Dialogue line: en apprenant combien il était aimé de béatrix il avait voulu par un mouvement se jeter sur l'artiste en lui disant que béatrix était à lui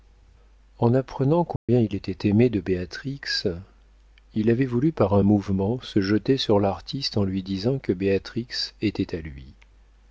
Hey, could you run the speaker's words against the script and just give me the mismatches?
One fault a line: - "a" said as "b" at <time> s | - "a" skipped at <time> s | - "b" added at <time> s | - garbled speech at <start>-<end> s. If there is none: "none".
none